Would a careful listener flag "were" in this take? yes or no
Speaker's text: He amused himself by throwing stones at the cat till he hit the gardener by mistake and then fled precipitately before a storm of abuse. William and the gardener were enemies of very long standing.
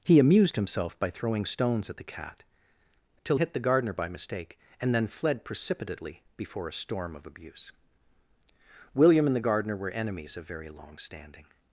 no